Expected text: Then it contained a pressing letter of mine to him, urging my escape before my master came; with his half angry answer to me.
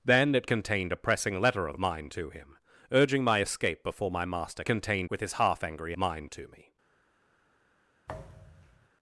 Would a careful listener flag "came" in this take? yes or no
yes